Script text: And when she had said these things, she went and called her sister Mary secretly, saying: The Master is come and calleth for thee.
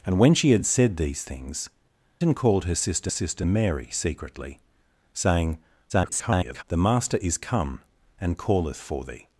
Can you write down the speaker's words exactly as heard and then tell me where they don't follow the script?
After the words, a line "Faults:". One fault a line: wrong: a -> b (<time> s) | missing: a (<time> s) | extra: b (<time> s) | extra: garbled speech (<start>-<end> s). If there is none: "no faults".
And when she had said these things, and called her sister sister Mary secretly, saying: [garbled] The Master is come and calleth for thee.
Faults:
missing: she went (1.7 s)
extra: sister (3.1 s)
extra: garbled speech (5.9-6.6 s)